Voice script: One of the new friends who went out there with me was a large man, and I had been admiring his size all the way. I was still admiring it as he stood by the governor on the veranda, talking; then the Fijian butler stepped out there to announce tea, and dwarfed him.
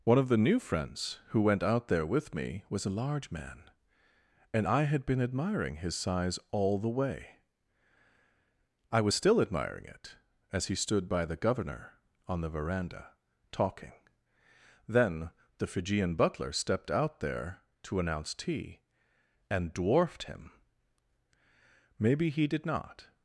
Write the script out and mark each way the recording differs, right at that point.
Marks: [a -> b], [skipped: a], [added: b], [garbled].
One of the new friends who went out there with me was a large man, and I had been admiring his size all the way. I was still admiring it as he stood by the governor on the veranda, talking; then the Fijian butler stepped out there to announce tea, and dwarfed him. [added: Maybe he did not]